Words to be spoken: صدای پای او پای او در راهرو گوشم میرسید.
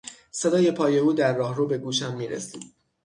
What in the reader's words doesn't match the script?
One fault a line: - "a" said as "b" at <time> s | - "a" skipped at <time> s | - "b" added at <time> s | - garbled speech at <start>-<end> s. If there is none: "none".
- "پای او" skipped at 1.1 s
- "به" added at 1.7 s